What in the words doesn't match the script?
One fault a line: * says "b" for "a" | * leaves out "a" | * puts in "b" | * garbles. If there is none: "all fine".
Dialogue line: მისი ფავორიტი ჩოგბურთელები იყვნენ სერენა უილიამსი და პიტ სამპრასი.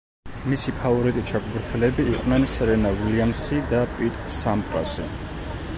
all fine